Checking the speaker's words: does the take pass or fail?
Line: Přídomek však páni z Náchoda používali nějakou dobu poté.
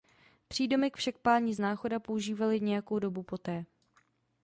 pass